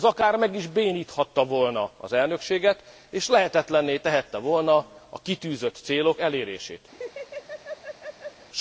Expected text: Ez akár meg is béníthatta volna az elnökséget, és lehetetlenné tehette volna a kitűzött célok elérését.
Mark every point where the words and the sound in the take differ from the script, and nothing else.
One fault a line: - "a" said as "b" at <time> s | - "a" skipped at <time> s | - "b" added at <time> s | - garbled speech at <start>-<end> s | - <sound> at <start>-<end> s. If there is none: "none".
- laugh at 6.9-8.5 s